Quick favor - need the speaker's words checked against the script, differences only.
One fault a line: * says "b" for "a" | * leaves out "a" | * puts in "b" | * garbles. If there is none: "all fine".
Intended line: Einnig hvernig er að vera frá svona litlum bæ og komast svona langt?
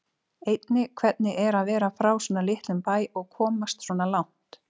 all fine